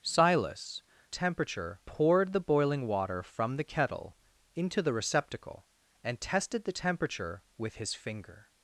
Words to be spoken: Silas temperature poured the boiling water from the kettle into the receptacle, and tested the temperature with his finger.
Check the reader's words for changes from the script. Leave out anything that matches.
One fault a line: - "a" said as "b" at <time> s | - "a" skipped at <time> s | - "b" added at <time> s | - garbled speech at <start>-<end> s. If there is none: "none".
none